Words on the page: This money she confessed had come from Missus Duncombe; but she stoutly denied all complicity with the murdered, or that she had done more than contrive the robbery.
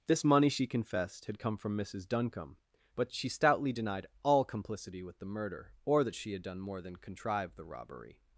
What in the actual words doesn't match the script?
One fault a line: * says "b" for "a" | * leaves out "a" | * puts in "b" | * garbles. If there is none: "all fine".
* says "murder" for "murdered"